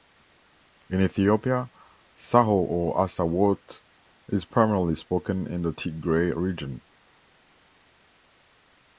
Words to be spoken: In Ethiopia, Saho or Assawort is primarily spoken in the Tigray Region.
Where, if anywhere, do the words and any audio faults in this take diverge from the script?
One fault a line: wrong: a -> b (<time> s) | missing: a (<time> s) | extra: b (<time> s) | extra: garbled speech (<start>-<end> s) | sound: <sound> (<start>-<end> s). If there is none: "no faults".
no faults